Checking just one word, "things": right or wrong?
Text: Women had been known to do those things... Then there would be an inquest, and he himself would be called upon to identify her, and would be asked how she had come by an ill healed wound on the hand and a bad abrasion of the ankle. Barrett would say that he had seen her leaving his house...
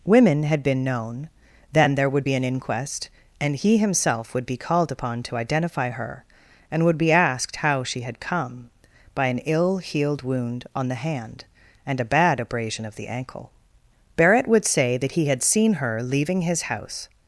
wrong